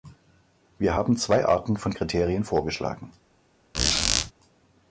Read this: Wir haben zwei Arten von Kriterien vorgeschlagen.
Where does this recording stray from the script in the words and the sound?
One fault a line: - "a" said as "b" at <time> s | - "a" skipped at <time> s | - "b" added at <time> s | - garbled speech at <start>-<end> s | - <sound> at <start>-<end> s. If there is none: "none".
- squeak at 3.7-4.3 s